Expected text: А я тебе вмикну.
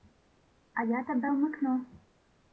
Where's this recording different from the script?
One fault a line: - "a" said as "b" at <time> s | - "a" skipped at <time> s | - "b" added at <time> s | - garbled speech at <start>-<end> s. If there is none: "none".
none